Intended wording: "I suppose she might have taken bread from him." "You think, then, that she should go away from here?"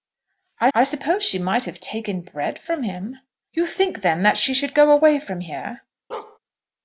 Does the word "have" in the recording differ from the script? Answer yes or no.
no